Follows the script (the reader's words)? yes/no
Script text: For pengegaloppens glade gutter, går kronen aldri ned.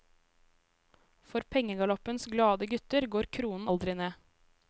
yes